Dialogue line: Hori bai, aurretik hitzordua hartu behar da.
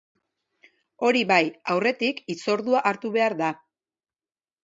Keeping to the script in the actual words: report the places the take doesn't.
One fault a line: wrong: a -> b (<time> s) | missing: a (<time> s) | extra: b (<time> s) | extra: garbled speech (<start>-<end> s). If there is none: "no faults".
no faults